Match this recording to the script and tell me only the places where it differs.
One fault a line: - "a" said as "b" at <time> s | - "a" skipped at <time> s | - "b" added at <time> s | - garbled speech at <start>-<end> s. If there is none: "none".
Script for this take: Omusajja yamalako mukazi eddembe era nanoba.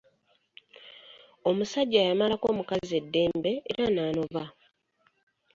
none